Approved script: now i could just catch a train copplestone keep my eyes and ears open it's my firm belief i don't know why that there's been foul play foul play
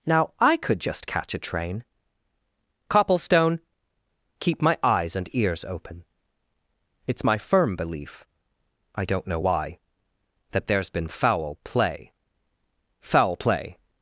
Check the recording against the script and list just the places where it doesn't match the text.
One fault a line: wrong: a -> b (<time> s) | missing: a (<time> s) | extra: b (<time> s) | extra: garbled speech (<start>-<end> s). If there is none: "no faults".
no faults